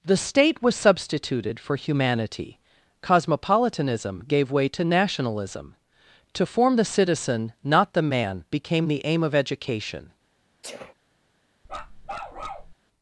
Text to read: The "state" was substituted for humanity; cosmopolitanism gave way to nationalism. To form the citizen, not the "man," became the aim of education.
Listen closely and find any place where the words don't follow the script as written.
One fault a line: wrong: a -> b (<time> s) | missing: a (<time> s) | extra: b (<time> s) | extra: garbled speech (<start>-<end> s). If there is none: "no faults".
no faults